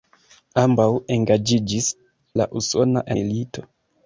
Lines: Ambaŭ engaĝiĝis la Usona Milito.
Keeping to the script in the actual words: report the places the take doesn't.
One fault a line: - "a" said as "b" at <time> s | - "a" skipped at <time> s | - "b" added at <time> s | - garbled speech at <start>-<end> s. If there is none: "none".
none